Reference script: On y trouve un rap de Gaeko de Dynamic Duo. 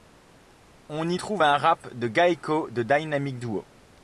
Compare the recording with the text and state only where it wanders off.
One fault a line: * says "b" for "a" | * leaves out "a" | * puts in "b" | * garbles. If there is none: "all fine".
all fine